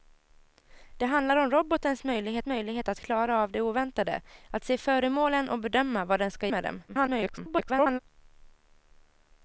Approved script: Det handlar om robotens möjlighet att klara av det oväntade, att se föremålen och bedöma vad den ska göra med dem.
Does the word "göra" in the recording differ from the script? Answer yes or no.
yes